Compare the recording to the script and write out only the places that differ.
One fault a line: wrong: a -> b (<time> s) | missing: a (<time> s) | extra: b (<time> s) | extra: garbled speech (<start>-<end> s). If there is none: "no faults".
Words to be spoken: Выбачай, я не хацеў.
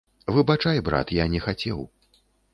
extra: брат (0.9 s)